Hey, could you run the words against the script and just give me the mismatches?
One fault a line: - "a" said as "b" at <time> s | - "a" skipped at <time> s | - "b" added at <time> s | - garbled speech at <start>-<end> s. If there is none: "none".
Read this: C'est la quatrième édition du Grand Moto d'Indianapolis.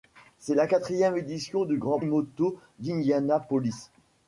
none